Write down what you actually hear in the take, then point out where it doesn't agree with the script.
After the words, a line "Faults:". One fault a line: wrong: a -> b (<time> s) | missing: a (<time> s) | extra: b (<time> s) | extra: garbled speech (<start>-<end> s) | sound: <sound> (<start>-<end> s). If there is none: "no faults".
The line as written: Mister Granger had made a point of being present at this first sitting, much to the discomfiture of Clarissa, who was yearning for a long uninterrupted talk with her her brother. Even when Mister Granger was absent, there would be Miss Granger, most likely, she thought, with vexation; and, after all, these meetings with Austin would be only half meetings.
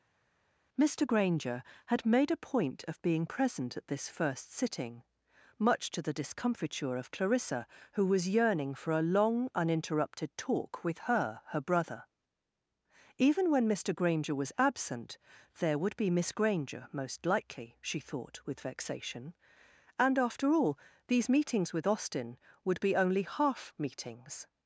Mister Granger had made a point of being present at this first sitting, much to the discomfiture of Clarissa, who was yearning for a long uninterrupted talk with her her brother. Even when Mister Granger was absent, there would be Miss Granger, most likely, she thought, with vexation; and, after all, these meetings with Austin would be only half meetings.
Faults:
no faults